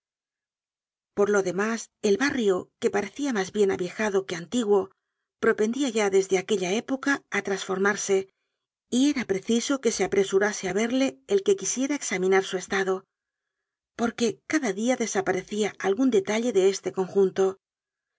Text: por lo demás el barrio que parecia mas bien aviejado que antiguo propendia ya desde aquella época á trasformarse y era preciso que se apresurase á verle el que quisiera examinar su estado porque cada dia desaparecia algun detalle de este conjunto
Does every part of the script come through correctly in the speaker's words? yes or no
yes